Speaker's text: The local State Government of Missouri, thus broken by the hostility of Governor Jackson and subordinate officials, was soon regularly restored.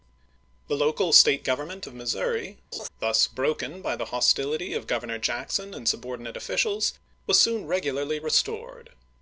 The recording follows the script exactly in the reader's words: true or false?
true